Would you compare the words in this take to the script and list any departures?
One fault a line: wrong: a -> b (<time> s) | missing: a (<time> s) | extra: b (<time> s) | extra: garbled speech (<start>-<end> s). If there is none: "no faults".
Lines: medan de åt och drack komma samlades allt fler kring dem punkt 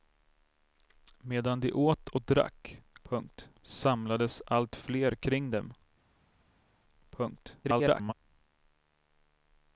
wrong: komma -> punkt (3.0 s)
extra: garbled speech (7.6-8.1 s)